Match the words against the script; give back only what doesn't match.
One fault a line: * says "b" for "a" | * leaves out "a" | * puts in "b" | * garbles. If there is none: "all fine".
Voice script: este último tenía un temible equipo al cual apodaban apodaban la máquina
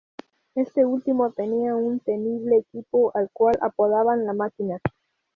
* leaves out "apodaban"